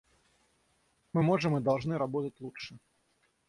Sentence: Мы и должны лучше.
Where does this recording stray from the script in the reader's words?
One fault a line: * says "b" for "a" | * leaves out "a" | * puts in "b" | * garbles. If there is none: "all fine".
* puts in "можем"
* puts in "работать"